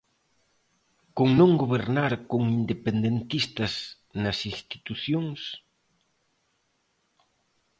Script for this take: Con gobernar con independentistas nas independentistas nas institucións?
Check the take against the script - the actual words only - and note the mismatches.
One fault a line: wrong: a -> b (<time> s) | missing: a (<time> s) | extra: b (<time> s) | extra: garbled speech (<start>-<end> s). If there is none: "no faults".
extra: non (1.4 s)
missing: independentistas nas (4.4 s)